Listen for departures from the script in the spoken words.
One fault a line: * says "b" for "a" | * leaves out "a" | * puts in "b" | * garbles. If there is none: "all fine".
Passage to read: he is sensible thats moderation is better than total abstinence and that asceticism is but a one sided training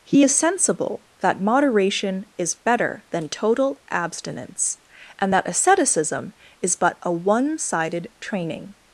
* says "that" for "thats"